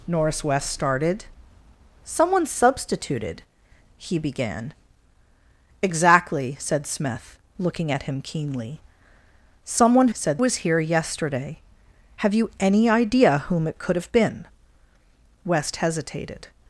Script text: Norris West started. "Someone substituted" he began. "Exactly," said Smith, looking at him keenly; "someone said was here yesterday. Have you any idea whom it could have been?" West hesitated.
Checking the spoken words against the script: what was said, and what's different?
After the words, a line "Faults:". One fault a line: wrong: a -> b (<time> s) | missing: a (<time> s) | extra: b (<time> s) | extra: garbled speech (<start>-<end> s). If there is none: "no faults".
Norris West started. "Someone substituted" he began. "Exactly," said Smith, looking at him keenly; "someone said was here yesterday. Have you any idea whom it could have been?" West hesitated.
Faults:
no faults